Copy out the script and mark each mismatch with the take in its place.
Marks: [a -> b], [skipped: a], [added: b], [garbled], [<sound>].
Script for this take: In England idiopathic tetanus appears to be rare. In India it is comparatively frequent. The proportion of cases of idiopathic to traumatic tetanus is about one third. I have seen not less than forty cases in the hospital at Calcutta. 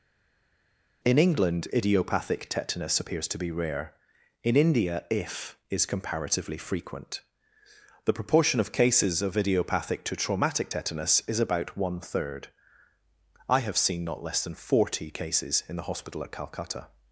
In England idiopathic tetanus appears to be rare. In India [it -> if] is comparatively frequent. The proportion of cases of idiopathic to traumatic tetanus is about one third. I have seen not less than forty cases in the hospital at Calcutta.